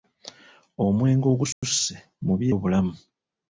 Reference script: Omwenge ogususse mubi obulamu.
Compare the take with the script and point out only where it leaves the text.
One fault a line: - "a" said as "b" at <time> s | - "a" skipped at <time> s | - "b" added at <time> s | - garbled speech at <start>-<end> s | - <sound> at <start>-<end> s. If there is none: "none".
- dropout at 1.5-1.6 s